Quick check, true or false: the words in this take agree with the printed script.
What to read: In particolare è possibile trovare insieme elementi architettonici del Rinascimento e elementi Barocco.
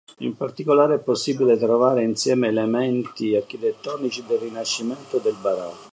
false